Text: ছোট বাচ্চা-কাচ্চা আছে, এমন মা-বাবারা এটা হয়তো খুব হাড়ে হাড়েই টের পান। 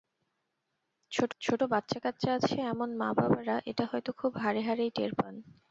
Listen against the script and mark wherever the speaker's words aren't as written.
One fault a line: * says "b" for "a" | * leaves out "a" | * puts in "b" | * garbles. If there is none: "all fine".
* puts in "ছোট"